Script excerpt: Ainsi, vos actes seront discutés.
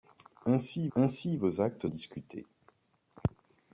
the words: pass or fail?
fail